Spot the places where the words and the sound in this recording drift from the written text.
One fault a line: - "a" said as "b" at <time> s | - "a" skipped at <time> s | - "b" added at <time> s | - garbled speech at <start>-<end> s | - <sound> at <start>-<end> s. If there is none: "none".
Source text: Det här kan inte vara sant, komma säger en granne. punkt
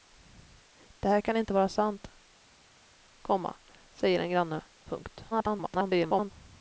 - garbled speech at 5.3-6.3 s